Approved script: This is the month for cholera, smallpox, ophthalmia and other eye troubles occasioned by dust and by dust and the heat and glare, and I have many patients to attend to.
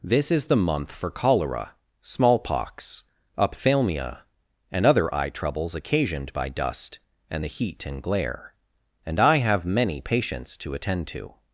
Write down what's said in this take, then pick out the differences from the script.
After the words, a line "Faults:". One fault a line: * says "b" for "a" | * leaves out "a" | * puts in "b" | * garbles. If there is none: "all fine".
This is the month for cholera, smallpox, ophthalmia and other eye troubles occasioned by dust and the heat and glare, and I have many patients to attend to.
Faults:
* leaves out "by dust and"